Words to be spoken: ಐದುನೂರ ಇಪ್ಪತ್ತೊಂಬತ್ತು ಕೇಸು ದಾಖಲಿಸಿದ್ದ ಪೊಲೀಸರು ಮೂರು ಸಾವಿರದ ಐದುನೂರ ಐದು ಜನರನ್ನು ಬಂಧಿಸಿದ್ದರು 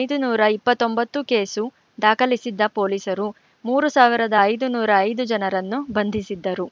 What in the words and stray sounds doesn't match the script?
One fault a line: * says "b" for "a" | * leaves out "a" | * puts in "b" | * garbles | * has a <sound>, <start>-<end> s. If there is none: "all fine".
all fine